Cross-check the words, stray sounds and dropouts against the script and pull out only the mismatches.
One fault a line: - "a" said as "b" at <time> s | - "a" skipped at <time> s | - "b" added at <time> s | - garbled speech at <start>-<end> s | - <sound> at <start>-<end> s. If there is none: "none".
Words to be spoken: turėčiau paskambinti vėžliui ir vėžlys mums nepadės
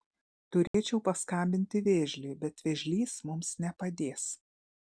- dropout at 0.7-0.7 s
- "ir" said as "bet" at 2.4 s